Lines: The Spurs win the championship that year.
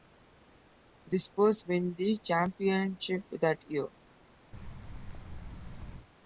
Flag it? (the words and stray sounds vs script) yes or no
yes